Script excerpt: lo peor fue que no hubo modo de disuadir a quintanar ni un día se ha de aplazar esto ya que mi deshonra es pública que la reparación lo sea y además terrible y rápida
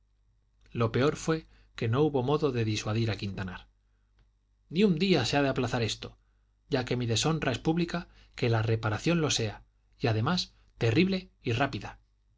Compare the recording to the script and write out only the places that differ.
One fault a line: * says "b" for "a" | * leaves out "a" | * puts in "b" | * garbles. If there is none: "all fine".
all fine